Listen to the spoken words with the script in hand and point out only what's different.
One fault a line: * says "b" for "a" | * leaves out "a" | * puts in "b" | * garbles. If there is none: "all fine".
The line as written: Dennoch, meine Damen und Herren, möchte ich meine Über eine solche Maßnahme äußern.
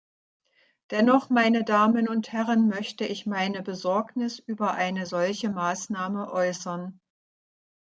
* puts in "Besorgnis"